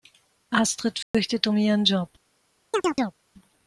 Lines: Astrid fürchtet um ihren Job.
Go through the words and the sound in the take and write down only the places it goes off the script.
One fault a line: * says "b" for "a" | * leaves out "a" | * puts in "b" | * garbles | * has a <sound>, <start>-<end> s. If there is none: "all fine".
* has a dropout, 1.0-1.1 s
* has a chirp, 2.7-3.2 s